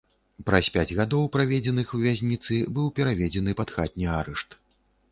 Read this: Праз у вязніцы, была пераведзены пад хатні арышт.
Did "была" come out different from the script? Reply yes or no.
yes